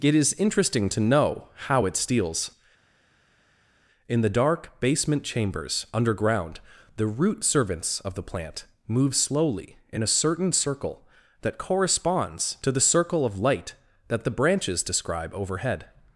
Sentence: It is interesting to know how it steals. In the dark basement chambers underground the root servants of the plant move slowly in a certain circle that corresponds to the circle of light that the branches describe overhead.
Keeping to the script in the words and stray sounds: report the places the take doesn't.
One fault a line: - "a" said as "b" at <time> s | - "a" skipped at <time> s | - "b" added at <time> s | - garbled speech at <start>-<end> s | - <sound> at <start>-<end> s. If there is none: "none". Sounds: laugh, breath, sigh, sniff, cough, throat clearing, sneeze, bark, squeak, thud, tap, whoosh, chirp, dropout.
none